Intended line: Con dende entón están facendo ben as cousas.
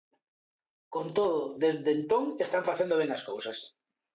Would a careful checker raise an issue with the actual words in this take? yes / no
yes